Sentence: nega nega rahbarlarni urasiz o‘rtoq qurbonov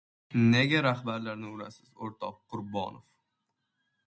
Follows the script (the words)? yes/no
no